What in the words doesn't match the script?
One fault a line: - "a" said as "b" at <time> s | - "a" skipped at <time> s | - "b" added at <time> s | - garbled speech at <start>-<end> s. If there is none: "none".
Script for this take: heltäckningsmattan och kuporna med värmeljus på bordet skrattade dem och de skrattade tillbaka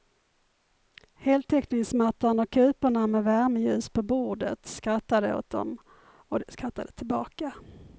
- "åt" added at 5.3 s